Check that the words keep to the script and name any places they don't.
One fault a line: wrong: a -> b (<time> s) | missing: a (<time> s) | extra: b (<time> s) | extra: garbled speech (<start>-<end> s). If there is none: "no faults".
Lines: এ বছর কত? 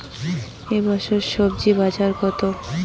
extra: স্বজি বাজার (1.3 s)